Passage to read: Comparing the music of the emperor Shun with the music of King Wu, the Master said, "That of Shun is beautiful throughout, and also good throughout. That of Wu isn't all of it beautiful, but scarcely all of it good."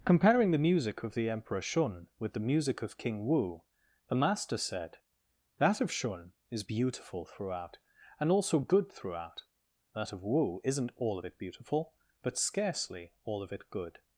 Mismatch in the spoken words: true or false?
false